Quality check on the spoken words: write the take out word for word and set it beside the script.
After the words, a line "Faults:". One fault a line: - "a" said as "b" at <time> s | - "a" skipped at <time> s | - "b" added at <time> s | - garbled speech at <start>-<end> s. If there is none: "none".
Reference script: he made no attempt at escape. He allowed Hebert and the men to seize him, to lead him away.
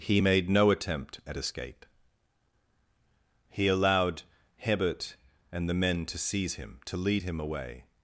he made no attempt at escape. He allowed Hebert and the men to seize him, to lead him away.
Faults:
none